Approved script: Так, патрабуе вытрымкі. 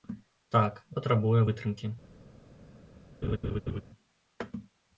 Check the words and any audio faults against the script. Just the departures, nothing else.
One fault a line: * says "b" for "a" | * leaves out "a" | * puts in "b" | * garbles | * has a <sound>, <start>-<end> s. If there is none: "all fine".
* has a laugh, 3.2-3.8 s